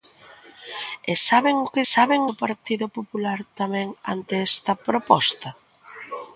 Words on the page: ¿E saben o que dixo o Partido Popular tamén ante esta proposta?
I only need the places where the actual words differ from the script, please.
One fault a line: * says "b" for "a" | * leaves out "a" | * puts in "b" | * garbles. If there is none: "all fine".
* says "saben" for "dixo"